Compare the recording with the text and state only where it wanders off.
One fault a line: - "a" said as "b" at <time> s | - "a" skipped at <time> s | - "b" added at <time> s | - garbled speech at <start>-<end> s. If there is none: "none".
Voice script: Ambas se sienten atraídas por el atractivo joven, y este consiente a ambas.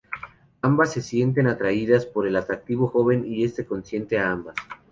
none